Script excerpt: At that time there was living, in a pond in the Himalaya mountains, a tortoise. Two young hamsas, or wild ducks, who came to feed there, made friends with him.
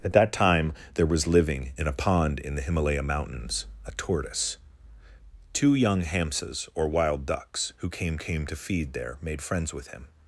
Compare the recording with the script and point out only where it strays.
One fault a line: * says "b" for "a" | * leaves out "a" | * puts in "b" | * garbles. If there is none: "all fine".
* puts in "came"